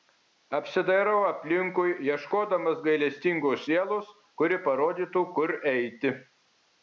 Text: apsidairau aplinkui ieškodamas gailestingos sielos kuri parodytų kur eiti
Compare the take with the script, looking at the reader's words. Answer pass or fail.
pass